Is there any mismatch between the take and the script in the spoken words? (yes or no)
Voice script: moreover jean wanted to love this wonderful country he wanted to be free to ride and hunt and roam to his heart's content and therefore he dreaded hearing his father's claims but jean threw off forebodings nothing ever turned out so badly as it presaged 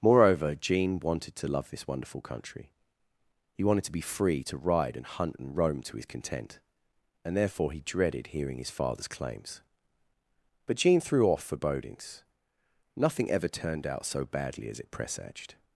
yes